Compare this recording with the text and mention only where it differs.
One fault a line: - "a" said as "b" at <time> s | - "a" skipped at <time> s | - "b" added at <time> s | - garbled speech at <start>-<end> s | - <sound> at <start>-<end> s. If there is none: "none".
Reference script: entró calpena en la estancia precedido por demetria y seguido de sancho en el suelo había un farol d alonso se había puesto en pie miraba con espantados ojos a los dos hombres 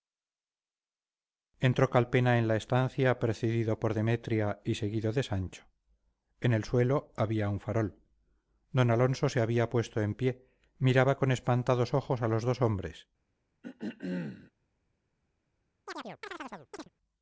- throat clearing at 13.6-14.5 s
- chirp at 15.9-16.9 s